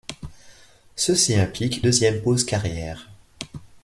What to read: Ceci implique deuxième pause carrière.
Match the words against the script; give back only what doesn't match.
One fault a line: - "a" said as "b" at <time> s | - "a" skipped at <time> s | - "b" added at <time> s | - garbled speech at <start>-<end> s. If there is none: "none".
none